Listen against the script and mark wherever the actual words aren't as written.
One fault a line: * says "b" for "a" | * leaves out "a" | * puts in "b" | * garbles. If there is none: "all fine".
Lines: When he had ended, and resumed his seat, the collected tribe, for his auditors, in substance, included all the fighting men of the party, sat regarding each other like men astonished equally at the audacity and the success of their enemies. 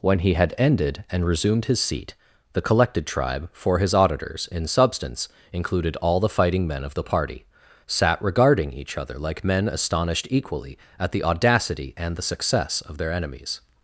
all fine